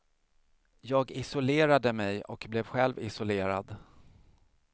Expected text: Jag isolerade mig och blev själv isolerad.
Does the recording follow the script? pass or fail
pass